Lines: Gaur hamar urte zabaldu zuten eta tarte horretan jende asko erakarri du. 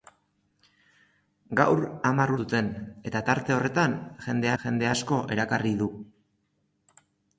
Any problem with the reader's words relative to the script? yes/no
yes